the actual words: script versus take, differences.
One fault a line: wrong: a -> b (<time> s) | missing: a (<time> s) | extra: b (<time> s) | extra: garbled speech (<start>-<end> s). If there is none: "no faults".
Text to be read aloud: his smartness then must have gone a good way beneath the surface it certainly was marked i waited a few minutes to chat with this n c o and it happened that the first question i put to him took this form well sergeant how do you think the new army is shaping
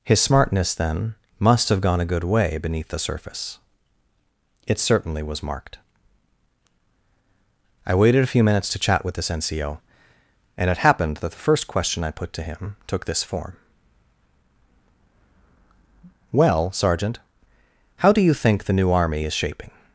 no faults